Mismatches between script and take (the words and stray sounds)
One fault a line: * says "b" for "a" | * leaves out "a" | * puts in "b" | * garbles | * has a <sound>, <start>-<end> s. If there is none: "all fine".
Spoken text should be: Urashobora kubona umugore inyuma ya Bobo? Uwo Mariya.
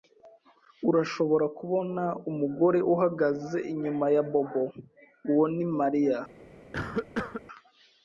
* puts in "uhagaze"
* puts in "ni"
* has a cough, 6.7-7.4 s